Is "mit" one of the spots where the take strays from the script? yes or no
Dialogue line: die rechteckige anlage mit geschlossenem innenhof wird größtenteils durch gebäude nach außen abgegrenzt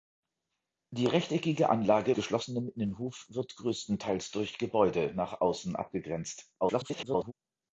yes